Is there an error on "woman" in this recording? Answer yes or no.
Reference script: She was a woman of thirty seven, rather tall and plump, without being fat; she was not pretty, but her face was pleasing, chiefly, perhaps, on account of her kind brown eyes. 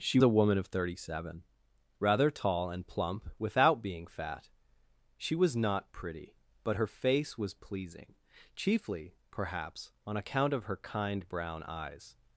no